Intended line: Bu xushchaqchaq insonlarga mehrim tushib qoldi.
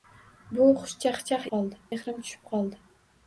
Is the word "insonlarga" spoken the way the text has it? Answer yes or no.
no